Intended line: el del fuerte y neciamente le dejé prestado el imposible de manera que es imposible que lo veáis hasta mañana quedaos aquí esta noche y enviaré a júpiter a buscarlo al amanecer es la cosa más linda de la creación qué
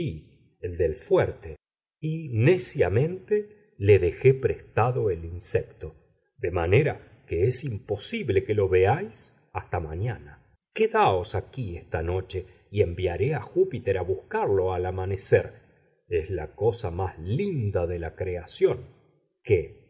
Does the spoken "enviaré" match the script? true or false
true